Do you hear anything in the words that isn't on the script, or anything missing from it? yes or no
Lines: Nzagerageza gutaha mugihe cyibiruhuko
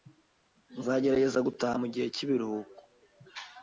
no